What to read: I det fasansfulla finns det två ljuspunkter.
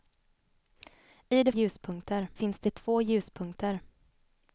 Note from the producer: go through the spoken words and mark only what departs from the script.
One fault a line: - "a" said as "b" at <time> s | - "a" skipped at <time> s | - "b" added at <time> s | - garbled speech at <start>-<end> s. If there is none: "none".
- "fasansfulla" said as "ljuspunkter" at 1.5 s